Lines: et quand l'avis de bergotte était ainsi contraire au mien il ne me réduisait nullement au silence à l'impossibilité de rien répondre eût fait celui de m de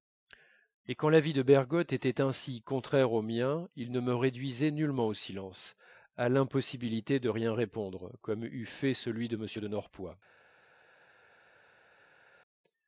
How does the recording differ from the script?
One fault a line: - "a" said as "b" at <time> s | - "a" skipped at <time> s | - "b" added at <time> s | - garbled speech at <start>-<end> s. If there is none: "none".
- "comme" added at 8.2 s